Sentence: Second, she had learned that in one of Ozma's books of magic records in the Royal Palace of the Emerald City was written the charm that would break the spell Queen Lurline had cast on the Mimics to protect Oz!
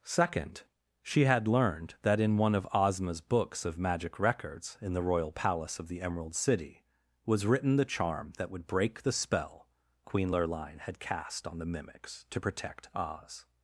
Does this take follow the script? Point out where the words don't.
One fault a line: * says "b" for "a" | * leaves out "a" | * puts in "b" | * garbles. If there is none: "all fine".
all fine